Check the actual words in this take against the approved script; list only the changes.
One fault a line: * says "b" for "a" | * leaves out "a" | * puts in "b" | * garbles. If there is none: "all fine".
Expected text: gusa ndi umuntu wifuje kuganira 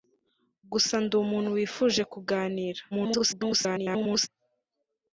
* garbles